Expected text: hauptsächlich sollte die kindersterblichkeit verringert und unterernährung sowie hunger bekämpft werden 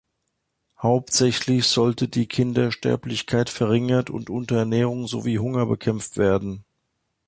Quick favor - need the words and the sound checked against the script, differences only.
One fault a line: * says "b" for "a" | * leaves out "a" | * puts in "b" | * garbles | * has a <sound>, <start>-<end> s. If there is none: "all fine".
all fine